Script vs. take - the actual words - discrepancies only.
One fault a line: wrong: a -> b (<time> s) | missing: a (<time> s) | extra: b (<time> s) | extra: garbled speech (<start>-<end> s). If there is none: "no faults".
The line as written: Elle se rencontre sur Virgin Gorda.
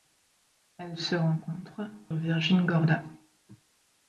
missing: sur (1.9 s)